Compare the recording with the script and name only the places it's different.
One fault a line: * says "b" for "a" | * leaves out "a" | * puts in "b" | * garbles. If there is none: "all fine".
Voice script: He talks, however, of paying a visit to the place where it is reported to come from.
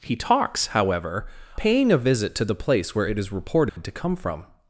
* leaves out "of"